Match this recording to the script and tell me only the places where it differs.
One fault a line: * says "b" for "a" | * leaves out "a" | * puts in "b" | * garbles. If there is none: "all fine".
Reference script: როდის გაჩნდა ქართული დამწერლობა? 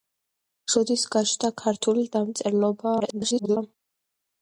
* garbles